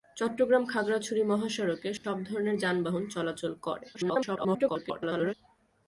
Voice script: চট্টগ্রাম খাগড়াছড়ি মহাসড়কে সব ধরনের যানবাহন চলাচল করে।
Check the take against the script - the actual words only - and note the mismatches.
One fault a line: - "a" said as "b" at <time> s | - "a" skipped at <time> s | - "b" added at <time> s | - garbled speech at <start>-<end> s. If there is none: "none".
- garbled speech at 3.9-5.3 s